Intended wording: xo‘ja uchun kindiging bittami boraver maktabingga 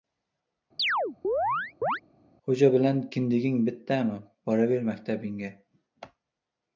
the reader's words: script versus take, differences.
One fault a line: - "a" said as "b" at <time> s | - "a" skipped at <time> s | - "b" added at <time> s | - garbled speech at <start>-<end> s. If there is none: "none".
- "uchun" said as "bilan" at 2.7 s